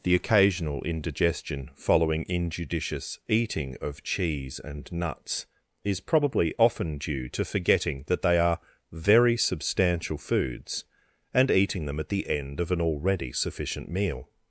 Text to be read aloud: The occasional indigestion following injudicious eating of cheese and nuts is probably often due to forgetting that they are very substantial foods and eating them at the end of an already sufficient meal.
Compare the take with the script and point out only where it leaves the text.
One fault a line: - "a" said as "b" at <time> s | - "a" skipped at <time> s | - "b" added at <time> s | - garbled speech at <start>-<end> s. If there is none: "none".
none